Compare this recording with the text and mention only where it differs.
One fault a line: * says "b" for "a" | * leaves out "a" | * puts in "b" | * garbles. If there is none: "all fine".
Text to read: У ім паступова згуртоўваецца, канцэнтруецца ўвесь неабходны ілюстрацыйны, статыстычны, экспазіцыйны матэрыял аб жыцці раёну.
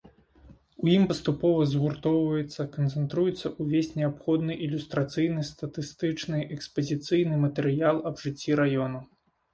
all fine